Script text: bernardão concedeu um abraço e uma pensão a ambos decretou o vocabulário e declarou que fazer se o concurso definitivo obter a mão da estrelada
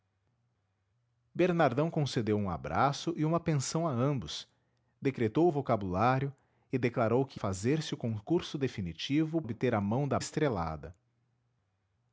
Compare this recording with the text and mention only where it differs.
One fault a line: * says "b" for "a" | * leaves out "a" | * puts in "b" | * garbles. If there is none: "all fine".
all fine